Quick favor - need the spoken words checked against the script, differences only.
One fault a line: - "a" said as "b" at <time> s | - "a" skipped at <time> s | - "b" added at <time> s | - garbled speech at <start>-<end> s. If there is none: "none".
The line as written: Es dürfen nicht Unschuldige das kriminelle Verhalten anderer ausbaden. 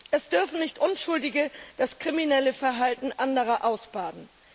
none